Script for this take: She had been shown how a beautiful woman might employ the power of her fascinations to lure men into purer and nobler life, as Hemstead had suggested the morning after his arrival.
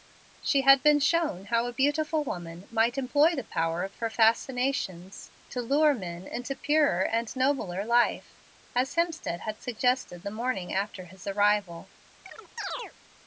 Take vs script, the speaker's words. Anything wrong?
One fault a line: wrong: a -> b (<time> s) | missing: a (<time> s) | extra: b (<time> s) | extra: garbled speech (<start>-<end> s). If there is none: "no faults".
no faults